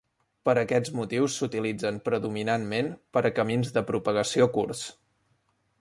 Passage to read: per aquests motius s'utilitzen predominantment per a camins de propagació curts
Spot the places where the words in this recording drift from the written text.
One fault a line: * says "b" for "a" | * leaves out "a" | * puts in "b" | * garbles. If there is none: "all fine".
all fine